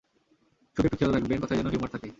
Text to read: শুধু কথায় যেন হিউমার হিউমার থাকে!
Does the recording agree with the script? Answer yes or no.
no